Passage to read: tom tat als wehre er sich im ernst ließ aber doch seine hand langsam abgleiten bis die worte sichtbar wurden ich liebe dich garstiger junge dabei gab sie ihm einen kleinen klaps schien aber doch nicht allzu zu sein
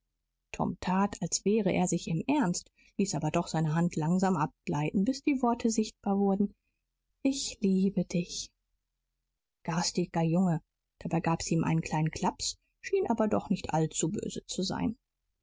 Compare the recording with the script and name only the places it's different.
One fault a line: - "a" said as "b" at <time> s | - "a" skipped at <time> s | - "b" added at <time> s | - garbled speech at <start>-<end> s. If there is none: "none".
- "böse" added at 14.1 s